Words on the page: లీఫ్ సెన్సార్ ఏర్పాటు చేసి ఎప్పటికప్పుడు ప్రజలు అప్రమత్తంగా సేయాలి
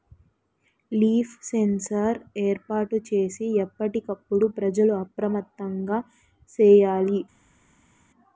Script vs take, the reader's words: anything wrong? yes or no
no